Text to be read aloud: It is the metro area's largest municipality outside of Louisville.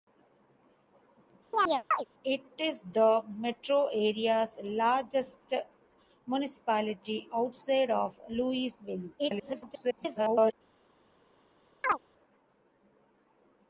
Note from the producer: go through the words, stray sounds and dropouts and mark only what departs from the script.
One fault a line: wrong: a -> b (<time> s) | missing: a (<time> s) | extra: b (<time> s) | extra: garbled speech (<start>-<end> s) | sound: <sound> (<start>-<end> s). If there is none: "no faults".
sound: chirp (1.5-2.1 s)
extra: garbled speech (9.2-10.5 s)
sound: chirp (11.8-12.0 s)